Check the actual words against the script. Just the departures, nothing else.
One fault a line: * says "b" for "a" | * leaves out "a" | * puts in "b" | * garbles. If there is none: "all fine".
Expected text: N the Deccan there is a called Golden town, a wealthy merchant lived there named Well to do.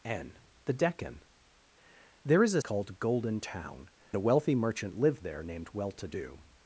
all fine